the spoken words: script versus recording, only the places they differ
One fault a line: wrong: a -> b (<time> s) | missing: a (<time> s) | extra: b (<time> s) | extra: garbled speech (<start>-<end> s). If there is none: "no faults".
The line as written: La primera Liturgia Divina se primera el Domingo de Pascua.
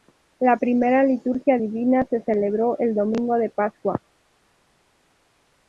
wrong: primera -> celebró (2.2 s)